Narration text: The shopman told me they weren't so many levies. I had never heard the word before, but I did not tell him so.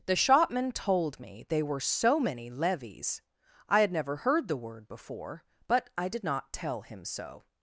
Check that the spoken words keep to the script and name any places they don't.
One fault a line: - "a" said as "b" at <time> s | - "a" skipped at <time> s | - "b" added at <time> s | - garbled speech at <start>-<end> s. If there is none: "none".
- "weren't" said as "were" at 1.6 s